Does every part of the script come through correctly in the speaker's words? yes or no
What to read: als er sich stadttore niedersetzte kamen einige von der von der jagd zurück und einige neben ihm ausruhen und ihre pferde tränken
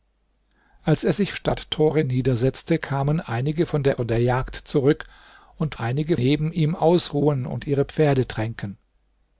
yes